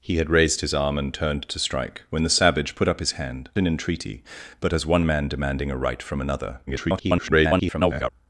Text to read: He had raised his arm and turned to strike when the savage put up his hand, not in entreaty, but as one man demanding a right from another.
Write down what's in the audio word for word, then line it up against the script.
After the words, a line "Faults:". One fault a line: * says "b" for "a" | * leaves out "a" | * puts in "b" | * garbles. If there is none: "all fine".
He had raised his arm and turned to strike when the savage put up his hand, in entreaty, but as one man demanding a right from another. [garbled]
Faults:
* leaves out "not"
* garbles